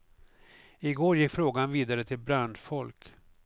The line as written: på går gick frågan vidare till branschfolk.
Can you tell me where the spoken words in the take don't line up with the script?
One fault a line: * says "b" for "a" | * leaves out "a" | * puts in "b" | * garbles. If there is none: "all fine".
* says "I" for "på"